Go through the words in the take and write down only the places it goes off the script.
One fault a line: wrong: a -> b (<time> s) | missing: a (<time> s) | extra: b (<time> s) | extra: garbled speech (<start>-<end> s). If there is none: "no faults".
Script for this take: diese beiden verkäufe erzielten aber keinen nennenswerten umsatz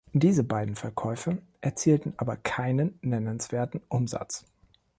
no faults